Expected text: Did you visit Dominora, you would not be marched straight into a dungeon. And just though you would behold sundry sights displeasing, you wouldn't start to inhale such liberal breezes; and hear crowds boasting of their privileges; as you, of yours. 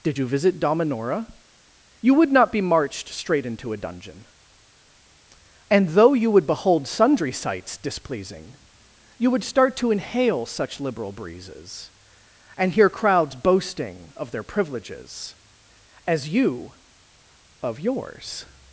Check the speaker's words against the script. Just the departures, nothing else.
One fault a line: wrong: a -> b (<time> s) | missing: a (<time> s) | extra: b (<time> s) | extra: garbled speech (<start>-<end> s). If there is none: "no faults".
missing: just (5.9 s)
wrong: wouldn't -> would (9.3 s)